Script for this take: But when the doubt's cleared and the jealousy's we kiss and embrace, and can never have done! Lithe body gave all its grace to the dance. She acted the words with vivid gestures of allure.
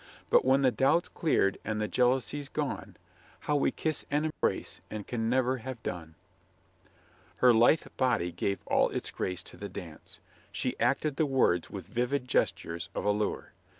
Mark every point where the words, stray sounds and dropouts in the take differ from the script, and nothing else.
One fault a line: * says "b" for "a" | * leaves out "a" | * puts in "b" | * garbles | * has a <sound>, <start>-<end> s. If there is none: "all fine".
* puts in "gone How"
* has a dropout, 4.3-4.4 s
* puts in "Her"